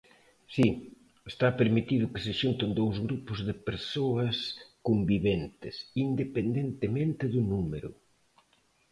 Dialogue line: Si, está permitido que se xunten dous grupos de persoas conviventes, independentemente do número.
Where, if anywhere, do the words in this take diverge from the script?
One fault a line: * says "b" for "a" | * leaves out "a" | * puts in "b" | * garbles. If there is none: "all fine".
all fine